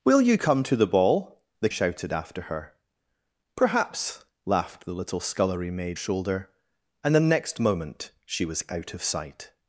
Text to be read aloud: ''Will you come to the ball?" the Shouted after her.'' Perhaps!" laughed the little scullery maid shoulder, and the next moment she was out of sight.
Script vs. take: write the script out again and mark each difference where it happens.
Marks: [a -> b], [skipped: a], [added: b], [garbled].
''Will you come to the ball?" the Shouted after her.'' Perhaps!" laughed the little scullery maid shoulder, and the next moment she was out of sight.